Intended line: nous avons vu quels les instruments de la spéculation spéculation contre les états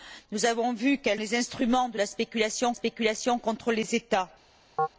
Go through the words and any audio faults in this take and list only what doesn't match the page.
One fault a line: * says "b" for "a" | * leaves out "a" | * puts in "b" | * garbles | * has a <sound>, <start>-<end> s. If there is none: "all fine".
* has a chirp, 4.8-4.9 s